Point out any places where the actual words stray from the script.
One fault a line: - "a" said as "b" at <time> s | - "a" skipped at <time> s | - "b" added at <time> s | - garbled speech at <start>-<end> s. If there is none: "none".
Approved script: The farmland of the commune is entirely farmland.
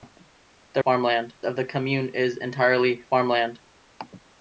none